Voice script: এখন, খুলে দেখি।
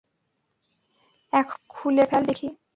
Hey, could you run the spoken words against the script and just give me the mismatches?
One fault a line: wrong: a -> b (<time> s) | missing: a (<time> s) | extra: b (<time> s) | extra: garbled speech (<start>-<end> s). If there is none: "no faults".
extra: ফেল (2.1 s)